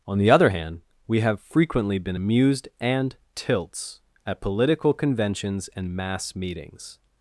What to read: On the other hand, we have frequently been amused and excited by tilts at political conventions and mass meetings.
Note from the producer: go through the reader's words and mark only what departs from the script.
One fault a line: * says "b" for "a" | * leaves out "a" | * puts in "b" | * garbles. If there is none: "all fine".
* leaves out "excited by"